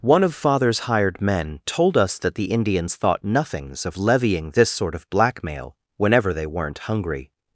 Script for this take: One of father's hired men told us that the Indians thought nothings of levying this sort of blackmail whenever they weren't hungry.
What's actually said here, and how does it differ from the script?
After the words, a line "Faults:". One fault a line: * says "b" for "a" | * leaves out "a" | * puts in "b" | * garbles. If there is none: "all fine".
One of father's hired men told us that the Indians thought nothings of levying this sort of blackmail whenever they weren't hungry.
Faults:
all fine